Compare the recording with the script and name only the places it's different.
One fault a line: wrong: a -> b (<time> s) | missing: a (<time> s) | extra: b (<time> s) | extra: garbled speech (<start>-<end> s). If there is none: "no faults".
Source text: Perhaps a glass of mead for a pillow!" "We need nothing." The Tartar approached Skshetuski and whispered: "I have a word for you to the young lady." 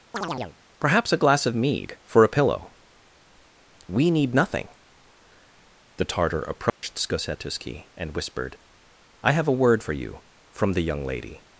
wrong: to -> from (10.5 s)